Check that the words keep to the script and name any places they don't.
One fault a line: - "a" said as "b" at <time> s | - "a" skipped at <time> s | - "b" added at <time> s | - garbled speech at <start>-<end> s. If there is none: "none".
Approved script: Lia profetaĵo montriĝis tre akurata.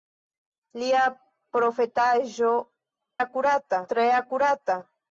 - "montriĝis" said as "akurata" at 3.2 s